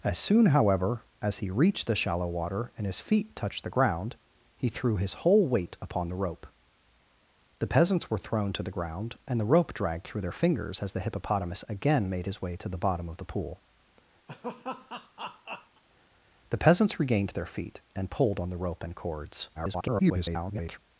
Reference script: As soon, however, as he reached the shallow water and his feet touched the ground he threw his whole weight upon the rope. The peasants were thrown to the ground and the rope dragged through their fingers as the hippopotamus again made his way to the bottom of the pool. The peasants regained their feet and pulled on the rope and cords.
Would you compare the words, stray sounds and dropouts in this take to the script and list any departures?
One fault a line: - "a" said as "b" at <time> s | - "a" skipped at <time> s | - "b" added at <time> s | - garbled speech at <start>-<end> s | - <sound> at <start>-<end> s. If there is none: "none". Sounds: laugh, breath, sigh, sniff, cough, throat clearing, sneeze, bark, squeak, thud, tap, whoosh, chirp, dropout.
- laugh at 14.3-15.8 s
- garbled speech at 19.5-20.8 s